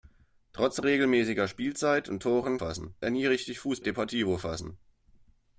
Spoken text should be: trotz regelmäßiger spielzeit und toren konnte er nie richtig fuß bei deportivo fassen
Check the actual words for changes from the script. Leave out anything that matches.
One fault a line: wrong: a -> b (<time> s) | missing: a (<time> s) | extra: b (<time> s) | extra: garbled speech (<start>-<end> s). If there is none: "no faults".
wrong: konnte -> fassen (2.6 s)
missing: bei (3.8 s)